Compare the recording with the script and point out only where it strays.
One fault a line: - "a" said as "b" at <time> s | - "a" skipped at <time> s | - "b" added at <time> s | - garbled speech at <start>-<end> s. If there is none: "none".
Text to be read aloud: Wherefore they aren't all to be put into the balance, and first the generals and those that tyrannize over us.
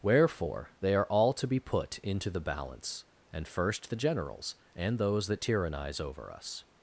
- "aren't" said as "are" at 0.9 s